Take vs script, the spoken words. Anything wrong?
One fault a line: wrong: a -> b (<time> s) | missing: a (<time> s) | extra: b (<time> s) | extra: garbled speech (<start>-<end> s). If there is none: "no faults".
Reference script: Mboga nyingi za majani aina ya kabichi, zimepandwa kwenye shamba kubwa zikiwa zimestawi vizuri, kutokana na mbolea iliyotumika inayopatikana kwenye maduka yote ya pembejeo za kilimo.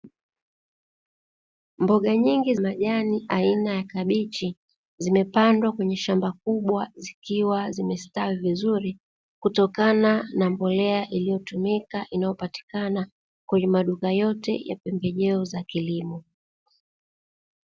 missing: za (2.5 s)